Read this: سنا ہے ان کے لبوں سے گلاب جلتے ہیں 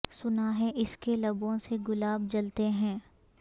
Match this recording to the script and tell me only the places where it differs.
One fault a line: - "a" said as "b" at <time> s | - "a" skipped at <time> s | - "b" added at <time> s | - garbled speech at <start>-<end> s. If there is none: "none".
- "ان" said as "اس" at 0.8 s